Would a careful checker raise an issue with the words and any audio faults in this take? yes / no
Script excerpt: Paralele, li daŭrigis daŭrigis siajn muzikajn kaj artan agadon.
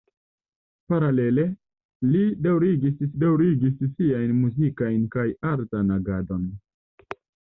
no